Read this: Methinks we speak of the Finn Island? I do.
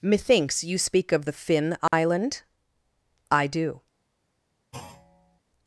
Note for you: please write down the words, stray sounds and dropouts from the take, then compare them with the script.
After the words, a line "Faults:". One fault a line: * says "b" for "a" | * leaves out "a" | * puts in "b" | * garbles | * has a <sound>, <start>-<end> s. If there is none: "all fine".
Methinks you speak of the Finn Island? I do.
Faults:
* says "you" for "we"
* has a dropout, 1.9-1.9 s
* has a thud, 4.7-5.4 s